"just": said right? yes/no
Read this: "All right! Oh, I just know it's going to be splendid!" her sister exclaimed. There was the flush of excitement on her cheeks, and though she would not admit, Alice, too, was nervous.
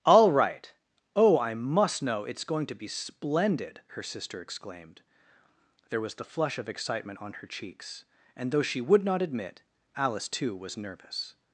no